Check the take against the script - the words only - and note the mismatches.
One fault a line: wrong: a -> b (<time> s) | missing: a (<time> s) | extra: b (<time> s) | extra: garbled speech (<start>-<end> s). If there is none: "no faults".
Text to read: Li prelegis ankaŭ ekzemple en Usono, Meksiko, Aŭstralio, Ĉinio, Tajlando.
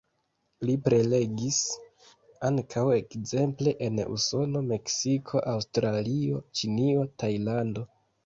no faults